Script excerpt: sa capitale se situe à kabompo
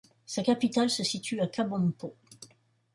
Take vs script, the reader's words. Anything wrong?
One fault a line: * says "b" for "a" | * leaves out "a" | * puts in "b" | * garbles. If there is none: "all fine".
all fine